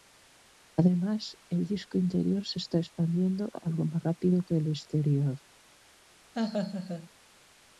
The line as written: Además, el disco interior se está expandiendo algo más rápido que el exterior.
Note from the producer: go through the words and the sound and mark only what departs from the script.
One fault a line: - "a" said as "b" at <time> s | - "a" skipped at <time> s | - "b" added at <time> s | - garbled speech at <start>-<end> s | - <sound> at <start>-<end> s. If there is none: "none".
- laugh at 6.3-7.1 s